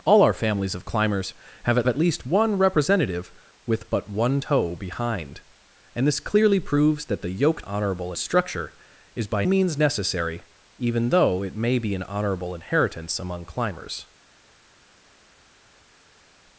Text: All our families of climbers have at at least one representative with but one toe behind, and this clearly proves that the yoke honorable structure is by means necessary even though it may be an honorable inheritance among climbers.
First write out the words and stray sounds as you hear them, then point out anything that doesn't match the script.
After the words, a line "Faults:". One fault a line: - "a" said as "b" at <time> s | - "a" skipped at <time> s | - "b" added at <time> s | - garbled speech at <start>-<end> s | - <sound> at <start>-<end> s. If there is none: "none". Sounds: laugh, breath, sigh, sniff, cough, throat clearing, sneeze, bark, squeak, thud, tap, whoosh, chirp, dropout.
All our families of climbers have at at least one representative with but one toe behind, and this clearly proves that the yoke honorable structure is by means necessary even though it may be an honorable inheritance among climbers.
Faults:
none